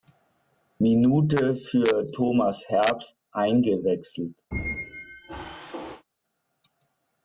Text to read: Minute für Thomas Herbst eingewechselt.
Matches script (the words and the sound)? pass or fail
fail